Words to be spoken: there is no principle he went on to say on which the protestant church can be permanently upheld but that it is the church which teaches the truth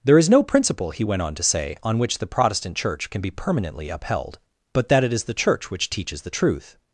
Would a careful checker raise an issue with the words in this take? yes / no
no